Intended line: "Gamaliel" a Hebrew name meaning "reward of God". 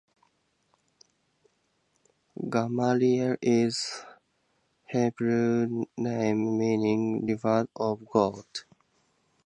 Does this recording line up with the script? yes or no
no